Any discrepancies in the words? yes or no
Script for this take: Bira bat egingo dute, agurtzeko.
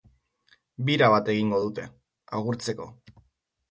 no